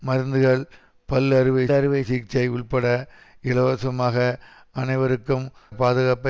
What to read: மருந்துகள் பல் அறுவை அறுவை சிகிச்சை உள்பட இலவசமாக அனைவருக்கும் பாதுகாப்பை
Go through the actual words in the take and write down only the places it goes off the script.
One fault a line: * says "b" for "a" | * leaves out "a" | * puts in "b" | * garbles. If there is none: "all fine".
all fine